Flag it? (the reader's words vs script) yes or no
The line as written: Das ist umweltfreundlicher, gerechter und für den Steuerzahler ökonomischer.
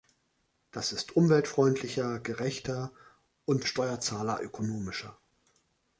yes